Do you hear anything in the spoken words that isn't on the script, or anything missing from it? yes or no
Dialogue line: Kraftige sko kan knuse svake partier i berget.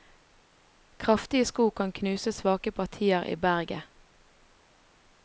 no